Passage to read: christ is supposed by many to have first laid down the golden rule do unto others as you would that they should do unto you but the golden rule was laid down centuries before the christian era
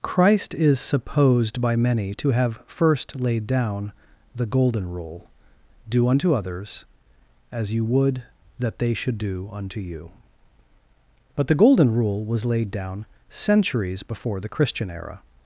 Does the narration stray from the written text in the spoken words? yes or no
no